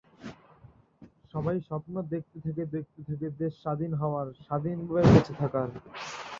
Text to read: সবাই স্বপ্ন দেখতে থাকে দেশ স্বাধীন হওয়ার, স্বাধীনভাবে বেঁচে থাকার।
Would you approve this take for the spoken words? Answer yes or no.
no